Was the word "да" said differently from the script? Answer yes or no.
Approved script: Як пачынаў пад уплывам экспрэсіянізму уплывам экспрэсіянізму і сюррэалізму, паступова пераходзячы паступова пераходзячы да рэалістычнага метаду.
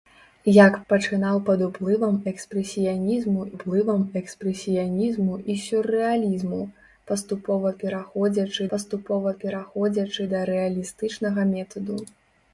no